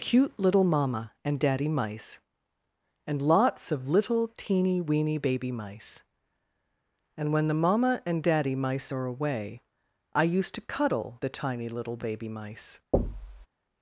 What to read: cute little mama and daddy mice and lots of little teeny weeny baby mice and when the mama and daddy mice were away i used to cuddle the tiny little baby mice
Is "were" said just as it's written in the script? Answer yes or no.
no